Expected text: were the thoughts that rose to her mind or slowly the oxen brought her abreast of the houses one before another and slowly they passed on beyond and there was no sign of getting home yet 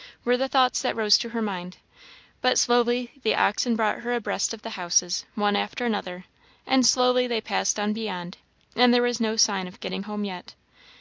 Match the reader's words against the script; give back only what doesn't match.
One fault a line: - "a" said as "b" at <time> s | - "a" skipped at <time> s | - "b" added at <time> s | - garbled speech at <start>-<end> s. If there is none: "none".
- "or" said as "but" at 2.4 s
- "before" said as "after" at 5.5 s